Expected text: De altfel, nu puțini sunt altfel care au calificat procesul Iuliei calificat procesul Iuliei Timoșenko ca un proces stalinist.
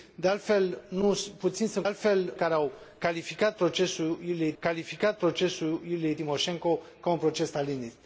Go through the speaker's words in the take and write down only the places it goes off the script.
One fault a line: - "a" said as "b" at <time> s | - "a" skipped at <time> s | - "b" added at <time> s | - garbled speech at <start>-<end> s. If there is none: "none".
none